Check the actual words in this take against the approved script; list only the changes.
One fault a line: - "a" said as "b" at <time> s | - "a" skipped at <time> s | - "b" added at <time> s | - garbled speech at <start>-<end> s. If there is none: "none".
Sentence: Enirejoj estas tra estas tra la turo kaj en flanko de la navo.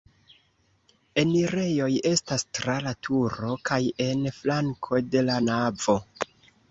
- "estas tra" skipped at 2.8 s